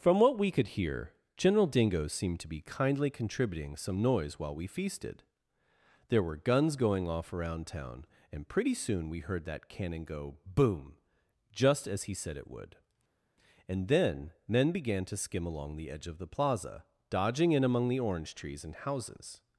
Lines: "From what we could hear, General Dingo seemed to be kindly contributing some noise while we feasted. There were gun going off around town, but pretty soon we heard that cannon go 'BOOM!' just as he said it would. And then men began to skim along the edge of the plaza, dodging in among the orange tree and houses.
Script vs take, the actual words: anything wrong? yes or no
yes